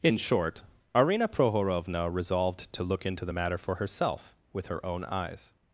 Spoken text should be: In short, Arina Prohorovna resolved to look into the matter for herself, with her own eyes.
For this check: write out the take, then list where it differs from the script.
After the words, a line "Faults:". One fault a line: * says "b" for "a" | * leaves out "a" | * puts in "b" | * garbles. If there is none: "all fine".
In short, Arina Prohorovna resolved to look into the matter for herself, with her own eyes.
Faults:
all fine